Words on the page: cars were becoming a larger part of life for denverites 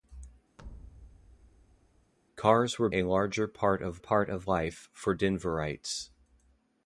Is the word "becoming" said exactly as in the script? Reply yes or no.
no